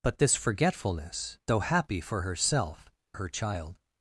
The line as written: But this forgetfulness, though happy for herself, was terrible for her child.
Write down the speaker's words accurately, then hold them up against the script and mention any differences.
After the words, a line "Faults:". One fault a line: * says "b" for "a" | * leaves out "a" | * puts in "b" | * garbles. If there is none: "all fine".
But this forgetfulness, though happy for herself, her child.
Faults:
* leaves out "was terrible for"